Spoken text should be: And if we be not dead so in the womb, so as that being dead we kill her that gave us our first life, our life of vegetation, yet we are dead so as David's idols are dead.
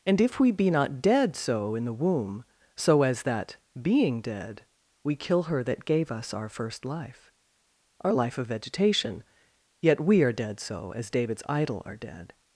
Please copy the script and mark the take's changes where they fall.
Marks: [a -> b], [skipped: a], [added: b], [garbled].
And if we be not dead so in the womb, so as that being dead we kill her that gave us our first life, our life of vegetation, yet we are dead so as David's [idols -> idol] are dead.